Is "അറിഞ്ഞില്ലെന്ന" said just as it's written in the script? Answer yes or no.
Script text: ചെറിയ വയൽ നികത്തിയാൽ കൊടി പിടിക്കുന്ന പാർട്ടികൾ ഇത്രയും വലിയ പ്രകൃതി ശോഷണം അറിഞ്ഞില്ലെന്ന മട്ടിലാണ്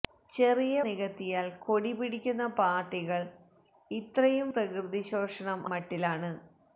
no